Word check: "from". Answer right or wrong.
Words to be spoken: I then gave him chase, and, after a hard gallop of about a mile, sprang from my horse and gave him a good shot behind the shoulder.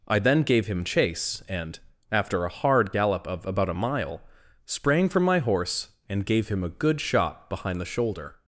right